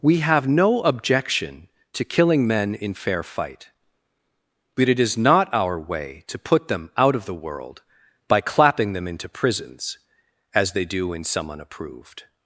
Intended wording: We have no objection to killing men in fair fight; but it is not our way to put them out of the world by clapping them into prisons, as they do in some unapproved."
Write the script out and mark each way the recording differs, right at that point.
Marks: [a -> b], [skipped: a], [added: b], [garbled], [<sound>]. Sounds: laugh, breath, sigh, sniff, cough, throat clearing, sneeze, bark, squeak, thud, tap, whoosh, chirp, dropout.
We have no objection to killing men in fair fight; but it is not our way to put them out of the world by clapping them into prisons, as they do in some unapproved."